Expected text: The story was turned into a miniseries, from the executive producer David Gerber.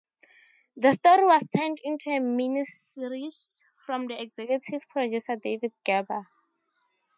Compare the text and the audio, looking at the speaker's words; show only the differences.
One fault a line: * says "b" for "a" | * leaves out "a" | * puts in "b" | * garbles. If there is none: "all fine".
all fine